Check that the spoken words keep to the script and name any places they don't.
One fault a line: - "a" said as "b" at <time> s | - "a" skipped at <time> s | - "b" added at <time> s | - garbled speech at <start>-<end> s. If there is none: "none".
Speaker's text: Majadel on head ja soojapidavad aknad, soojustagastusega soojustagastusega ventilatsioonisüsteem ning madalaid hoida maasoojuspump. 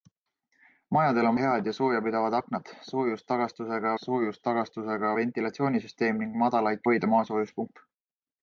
none